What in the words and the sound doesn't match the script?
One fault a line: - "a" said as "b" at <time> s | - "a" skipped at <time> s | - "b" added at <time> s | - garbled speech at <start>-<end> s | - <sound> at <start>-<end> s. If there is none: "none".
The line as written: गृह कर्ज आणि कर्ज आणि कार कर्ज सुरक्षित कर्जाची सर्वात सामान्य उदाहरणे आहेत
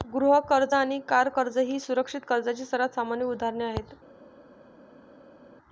- "कर्ज आणि" skipped at 1.0 s
- "ही" added at 1.6 s